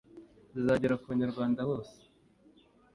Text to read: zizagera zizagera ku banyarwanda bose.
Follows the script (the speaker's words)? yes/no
no